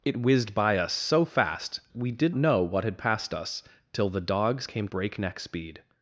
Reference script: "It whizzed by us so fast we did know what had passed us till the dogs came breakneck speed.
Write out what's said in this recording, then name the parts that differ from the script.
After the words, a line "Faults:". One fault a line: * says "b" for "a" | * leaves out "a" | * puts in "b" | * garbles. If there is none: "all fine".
"It whizzed by us so fast we did know what had passed us till the dogs came breakneck speed.
Faults:
all fine